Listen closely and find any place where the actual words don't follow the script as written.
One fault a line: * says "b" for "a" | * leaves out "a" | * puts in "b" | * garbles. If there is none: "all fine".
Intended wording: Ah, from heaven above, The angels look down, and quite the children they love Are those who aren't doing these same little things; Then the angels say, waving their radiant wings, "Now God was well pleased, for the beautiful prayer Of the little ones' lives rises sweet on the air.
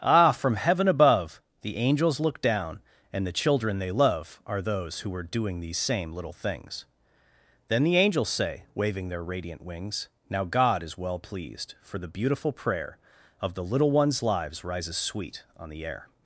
* leaves out "quite"
* says "are" for "aren't"
* says "is" for "was"